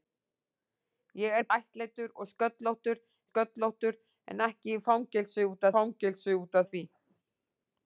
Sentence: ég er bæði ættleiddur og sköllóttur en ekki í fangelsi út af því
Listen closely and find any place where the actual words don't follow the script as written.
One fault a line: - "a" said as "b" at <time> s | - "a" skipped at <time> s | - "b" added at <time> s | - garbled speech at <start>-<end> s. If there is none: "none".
- "bæði" skipped at 1.4 s
- "sköllóttur" added at 3.2 s
- "fangelsi út" added at 5.8 s